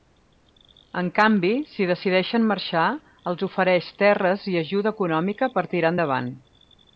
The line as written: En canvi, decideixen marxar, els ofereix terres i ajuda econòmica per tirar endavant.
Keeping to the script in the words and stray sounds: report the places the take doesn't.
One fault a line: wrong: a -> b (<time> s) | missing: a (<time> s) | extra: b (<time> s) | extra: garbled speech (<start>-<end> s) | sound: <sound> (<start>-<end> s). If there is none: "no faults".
extra: si (1.7 s)